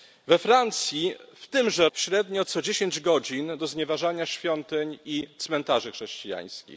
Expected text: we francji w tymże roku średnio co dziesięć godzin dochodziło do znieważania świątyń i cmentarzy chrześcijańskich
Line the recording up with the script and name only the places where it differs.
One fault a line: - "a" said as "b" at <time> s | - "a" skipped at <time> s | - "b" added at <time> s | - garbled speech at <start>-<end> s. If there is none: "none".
- "roku" skipped at 1.9 s
- "dochodziło" skipped at 3.5 s